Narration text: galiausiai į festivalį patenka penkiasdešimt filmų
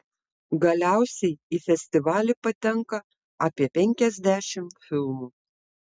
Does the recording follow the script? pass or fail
fail